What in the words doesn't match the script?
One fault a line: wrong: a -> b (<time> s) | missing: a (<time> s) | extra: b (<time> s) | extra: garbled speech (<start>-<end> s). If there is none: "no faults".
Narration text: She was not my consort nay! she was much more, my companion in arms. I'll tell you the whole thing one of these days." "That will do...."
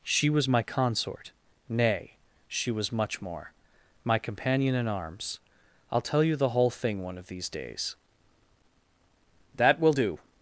missing: not (0.5 s)